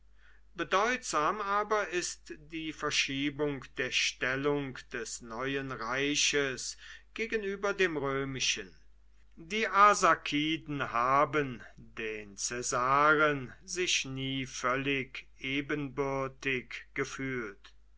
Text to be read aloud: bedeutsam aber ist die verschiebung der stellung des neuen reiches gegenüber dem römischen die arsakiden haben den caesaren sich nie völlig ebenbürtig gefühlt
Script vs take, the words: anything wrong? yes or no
no